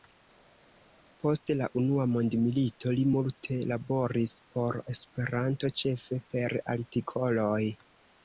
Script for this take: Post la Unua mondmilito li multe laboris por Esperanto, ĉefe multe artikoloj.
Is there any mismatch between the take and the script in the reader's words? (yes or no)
yes